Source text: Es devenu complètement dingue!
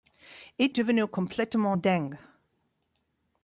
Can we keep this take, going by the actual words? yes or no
yes